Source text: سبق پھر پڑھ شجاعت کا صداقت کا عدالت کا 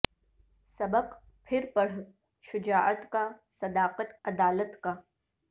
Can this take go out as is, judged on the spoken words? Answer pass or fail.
fail